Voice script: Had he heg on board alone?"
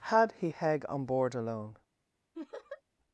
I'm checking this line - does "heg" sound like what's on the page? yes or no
yes